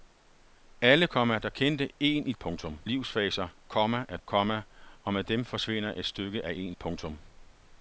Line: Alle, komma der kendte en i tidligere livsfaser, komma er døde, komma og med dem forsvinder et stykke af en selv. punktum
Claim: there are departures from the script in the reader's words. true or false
true